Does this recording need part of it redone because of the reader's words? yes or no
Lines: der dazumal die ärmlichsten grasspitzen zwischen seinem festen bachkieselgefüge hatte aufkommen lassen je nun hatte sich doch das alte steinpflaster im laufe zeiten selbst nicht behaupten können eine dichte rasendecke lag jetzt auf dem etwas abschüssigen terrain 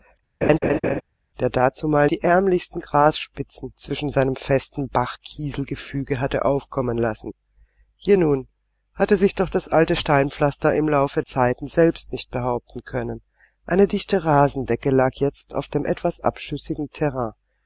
no